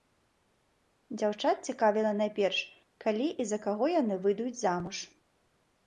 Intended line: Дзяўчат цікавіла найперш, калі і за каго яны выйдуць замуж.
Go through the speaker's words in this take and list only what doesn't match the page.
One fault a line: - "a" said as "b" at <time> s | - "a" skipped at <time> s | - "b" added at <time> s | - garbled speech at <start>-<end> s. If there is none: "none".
none